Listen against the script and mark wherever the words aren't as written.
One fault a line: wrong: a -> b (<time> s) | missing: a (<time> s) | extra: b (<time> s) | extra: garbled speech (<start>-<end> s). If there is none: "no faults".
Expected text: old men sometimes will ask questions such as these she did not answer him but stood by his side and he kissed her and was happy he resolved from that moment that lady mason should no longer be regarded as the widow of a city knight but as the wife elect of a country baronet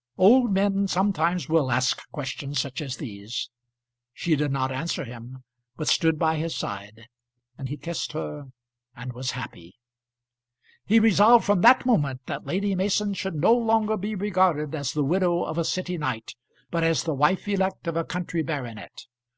no faults